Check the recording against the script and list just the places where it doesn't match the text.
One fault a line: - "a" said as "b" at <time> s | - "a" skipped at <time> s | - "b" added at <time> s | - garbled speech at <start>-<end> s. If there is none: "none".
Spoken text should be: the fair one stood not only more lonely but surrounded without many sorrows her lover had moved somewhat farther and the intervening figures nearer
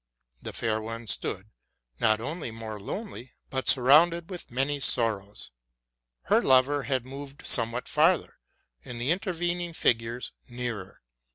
- "without" said as "with" at 4.3 s